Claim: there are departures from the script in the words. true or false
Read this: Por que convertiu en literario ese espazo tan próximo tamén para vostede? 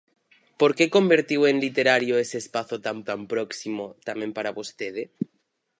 true